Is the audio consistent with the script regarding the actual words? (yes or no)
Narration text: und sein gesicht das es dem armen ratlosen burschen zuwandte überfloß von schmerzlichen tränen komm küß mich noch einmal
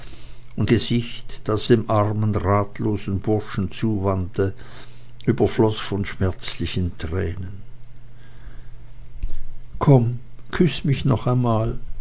no